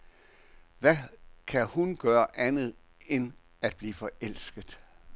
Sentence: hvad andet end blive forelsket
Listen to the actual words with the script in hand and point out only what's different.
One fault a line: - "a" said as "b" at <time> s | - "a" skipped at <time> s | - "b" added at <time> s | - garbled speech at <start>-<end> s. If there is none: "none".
- "kan hun gøre" added at 1.5 s
- "at" added at 3.6 s